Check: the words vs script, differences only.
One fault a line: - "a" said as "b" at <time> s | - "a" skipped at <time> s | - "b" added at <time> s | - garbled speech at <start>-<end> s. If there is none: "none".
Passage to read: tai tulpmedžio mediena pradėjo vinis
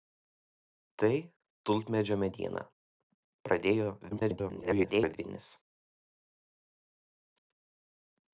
- garbled speech at 4.1-5.2 s